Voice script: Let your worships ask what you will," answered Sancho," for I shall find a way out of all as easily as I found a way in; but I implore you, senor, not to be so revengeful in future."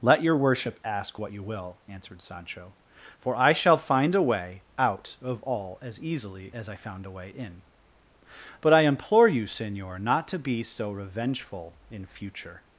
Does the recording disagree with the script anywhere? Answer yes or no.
yes